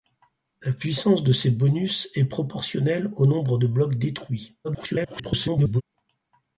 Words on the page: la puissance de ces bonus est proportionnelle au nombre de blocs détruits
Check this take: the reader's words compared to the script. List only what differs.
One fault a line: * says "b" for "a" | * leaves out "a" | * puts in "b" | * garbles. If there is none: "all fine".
* garbles